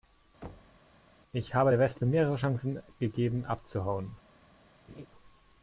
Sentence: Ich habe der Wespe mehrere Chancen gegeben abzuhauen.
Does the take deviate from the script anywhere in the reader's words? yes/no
no